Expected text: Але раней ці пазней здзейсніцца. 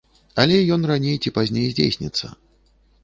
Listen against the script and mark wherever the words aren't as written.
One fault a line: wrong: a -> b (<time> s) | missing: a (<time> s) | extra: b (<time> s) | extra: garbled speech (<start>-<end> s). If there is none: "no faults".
extra: ён (0.8 s)